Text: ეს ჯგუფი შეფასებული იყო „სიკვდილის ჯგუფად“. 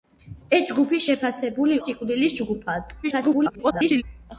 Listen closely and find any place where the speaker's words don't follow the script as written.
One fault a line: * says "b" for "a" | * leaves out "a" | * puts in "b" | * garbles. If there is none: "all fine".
* leaves out "იყო"
* garbles